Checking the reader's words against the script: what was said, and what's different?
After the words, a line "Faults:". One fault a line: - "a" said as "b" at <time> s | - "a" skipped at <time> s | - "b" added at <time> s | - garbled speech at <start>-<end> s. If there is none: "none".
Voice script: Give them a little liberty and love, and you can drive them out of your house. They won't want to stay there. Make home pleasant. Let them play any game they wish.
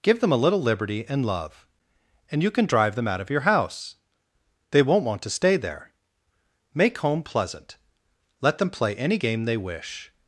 Give them a little liberty and love, and you can drive them out of your house. They won't want to stay there. Make home pleasant. Let them play any game they wish.
Faults:
none